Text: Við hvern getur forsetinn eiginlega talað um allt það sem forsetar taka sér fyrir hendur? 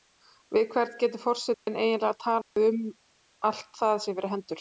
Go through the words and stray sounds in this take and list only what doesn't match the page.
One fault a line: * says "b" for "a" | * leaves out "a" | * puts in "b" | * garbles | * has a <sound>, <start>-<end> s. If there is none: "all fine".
* has a dropout, 1.5-1.7 s
* has a dropout, 2.4-2.6 s
* leaves out "sem forsetar taka"